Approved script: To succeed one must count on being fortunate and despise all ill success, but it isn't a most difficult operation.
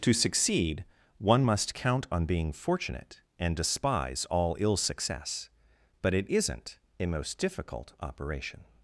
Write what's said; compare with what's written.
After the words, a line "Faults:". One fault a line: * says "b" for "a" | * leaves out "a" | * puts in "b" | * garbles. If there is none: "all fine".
To succeed one must count on being fortunate and despise all ill success, but it isn't a most difficult operation.
Faults:
all fine